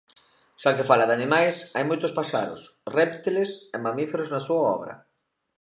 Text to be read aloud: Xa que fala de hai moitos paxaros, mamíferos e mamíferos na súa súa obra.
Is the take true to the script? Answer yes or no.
no